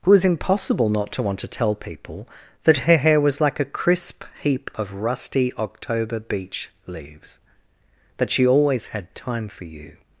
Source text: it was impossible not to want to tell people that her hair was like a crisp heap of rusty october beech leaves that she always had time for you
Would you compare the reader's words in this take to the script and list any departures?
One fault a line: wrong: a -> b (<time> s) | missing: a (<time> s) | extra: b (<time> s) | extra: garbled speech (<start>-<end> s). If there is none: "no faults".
no faults